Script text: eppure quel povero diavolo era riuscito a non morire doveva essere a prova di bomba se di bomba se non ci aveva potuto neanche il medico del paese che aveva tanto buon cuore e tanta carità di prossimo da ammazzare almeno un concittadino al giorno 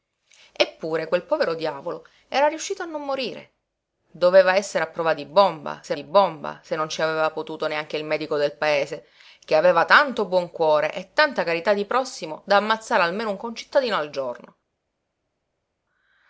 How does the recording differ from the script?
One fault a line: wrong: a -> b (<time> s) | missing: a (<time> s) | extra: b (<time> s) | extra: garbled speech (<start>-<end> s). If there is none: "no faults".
no faults